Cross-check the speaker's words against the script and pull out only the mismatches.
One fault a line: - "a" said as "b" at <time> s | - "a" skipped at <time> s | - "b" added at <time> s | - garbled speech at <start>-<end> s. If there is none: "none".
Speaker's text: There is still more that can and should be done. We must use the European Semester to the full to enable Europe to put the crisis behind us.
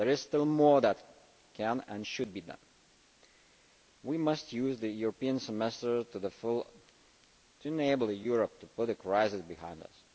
none